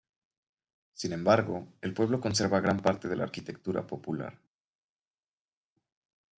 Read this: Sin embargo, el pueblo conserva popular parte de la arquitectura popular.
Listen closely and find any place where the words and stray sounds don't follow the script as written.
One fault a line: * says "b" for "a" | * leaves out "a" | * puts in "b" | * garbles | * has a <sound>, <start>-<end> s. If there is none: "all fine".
* says "gran" for "popular"